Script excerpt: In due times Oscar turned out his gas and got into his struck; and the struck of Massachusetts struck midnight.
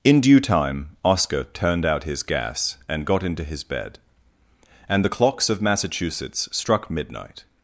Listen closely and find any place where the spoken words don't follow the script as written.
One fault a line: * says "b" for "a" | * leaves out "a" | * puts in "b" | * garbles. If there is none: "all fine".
* says "time" for "times"
* says "bed" for "struck"
* says "clocks" for "struck"